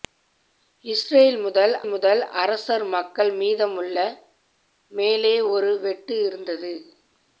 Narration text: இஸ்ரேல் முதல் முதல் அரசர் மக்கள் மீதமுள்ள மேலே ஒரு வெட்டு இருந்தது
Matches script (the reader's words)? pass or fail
pass